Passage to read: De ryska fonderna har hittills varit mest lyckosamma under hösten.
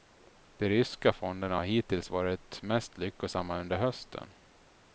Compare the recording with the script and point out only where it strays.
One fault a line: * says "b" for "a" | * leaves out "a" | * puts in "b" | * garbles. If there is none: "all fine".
all fine